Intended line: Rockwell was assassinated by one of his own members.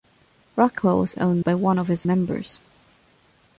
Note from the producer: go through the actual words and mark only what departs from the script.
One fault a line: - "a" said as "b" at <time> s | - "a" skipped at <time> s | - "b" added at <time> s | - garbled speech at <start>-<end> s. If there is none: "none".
- "assassinated" said as "own" at 1.2 s
- "own" skipped at 2.1 s